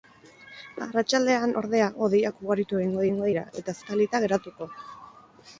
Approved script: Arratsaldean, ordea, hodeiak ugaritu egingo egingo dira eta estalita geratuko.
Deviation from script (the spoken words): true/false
false